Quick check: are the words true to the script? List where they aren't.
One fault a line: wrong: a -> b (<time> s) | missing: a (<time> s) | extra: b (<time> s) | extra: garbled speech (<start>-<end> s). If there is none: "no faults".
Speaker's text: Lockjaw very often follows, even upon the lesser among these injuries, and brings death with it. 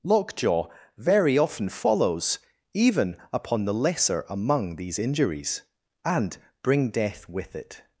wrong: brings -> bring (6.6 s)